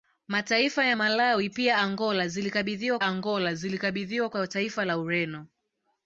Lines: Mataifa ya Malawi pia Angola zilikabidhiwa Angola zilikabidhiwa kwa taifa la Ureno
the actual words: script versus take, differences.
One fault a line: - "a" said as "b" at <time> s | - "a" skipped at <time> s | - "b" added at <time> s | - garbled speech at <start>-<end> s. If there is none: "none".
none